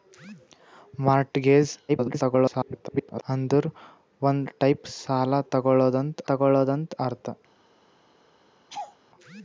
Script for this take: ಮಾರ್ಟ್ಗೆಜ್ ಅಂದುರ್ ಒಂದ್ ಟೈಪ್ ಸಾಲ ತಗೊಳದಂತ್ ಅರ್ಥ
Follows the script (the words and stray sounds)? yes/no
no